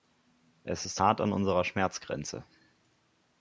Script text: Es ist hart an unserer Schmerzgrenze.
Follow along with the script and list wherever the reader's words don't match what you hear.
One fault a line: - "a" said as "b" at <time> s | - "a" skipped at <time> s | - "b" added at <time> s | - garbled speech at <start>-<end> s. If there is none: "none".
none